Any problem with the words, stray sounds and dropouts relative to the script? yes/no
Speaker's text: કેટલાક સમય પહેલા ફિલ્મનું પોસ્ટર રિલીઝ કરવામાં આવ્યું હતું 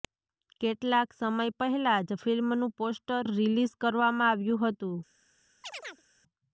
yes